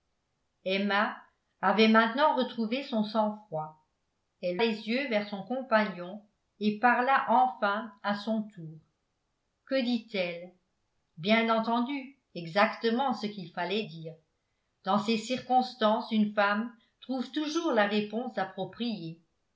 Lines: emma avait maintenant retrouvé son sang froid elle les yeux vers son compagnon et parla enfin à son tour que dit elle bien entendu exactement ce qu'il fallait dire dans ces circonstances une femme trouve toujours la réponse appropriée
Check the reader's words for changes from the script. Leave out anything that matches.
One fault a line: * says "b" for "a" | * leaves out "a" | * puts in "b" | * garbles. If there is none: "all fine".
all fine